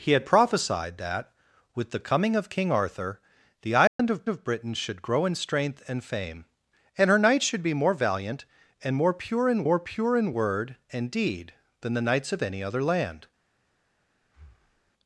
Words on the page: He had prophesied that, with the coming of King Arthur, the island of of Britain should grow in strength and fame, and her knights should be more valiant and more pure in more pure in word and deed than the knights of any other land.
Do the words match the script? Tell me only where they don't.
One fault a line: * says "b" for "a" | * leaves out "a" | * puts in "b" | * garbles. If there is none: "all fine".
all fine